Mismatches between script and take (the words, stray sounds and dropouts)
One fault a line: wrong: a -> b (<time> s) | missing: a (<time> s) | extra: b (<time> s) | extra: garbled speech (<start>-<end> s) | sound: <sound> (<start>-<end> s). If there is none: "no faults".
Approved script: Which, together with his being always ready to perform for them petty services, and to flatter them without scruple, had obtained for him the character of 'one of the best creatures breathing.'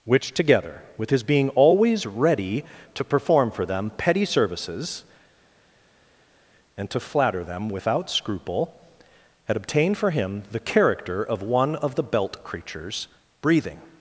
wrong: best -> belt (12.0 s)